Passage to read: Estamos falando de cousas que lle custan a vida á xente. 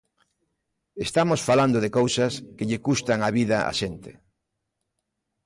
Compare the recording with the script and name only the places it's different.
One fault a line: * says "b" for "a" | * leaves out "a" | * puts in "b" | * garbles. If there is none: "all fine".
all fine